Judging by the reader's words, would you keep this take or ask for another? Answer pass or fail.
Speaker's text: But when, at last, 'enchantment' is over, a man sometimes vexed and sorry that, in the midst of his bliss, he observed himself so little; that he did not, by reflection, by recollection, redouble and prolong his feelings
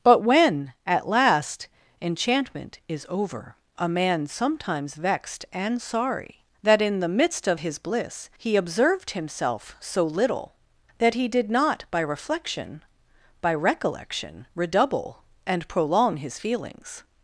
pass